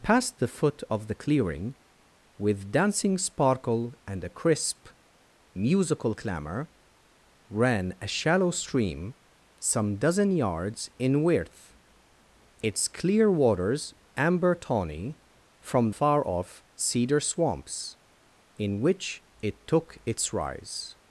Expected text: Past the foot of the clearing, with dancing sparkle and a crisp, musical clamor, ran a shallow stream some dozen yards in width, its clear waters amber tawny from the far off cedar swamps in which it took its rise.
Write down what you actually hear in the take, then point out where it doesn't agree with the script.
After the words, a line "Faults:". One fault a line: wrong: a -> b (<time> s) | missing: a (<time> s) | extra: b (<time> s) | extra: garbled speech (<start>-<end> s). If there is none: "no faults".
Past the foot of the clearing, with dancing sparkle and a crisp, musical clamor, ran a shallow stream some dozen yards in width, its clear waters amber tawny from far off cedar swamps in which it took its rise.
Faults:
missing: the (15.9 s)